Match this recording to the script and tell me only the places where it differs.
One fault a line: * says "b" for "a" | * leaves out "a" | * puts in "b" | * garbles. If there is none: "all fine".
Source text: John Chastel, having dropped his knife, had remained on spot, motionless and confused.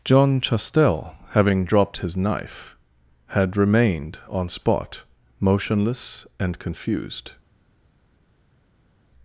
all fine